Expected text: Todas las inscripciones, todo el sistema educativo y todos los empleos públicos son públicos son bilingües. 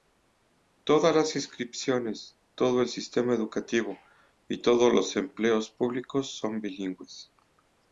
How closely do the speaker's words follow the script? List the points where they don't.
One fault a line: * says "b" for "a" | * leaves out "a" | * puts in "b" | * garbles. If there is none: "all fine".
* leaves out "públicos son"